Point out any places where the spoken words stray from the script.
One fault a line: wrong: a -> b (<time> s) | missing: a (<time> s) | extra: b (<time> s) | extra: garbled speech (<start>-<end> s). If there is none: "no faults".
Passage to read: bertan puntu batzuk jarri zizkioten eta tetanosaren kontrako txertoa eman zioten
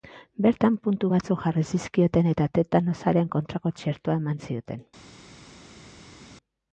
no faults